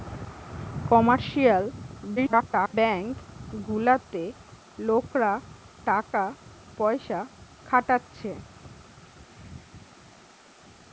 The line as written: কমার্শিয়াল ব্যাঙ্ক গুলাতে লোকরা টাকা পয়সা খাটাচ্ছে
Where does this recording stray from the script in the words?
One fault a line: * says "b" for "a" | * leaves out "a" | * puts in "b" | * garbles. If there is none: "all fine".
* garbles